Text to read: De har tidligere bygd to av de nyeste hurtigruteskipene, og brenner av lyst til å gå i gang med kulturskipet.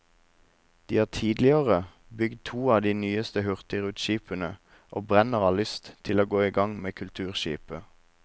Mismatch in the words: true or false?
false